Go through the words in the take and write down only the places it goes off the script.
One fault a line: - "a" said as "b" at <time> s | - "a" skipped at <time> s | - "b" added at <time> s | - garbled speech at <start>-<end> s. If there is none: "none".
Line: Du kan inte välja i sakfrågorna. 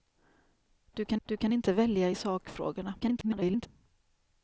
- "du kan" added at 1.2 s
- garbled speech at 3.0-3.7 s